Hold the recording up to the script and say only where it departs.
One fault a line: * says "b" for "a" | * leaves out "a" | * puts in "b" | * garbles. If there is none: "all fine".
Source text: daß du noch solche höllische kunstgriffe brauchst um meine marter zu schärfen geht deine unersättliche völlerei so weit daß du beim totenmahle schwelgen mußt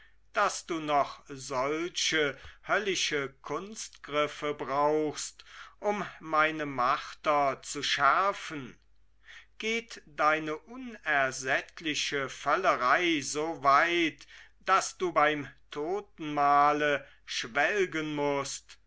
all fine